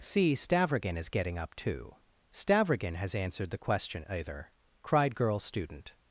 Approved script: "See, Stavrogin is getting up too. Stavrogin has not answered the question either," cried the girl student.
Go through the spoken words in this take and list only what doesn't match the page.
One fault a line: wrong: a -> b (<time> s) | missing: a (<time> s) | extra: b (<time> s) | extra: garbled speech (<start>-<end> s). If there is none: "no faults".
missing: not (3.1 s)
missing: the (5.1 s)